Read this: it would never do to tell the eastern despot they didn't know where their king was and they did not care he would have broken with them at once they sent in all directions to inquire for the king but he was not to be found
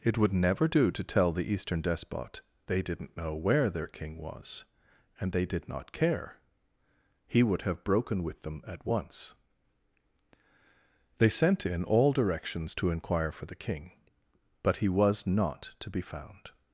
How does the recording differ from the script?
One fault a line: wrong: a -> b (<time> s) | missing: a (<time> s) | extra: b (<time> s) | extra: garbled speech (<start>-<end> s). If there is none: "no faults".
no faults